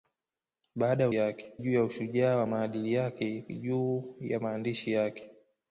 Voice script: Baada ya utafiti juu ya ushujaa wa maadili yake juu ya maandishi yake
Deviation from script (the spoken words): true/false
true